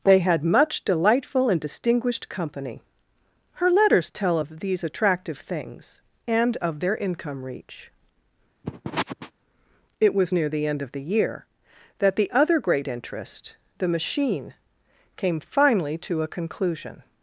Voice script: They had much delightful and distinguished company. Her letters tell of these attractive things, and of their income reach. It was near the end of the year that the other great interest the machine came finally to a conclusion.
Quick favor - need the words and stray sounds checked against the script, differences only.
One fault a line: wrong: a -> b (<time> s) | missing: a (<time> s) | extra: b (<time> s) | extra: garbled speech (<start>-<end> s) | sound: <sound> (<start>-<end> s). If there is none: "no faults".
sound: sniff (8.6-9.3 s)